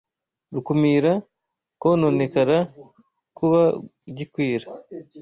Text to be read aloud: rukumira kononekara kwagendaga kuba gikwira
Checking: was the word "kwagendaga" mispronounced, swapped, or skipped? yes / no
yes